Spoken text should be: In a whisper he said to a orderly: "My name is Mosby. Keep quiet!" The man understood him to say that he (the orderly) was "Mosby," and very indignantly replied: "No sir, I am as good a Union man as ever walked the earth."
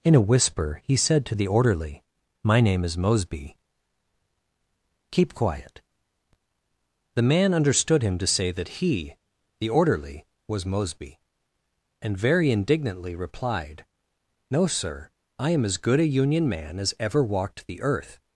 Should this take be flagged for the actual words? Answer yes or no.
yes